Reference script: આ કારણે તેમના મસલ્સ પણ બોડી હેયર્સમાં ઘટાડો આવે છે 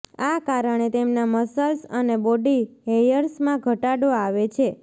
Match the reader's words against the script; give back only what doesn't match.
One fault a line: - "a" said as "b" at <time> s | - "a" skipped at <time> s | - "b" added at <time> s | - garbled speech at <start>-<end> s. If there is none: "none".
- "પણ" said as "અને" at 1.9 s